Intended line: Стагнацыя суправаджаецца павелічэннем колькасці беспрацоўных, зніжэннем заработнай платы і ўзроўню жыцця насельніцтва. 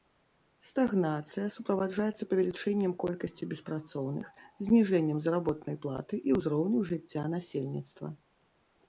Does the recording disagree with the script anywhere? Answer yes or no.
no